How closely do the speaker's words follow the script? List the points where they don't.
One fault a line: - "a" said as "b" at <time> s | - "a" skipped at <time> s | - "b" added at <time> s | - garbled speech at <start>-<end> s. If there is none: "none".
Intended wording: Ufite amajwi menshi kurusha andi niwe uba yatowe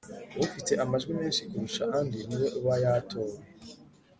none